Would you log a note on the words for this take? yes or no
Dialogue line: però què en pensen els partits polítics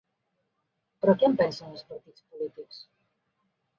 no